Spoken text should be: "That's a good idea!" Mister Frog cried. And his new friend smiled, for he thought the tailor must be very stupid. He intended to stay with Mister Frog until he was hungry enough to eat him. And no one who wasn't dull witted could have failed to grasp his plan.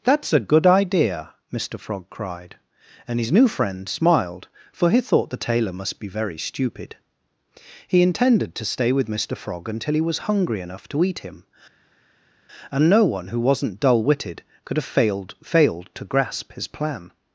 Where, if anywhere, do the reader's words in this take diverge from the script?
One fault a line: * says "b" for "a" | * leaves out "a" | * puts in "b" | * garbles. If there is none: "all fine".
* puts in "failed"